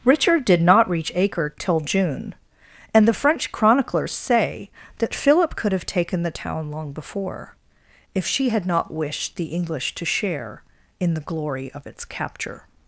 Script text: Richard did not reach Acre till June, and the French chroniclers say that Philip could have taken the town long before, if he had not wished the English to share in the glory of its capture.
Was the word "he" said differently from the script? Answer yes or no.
yes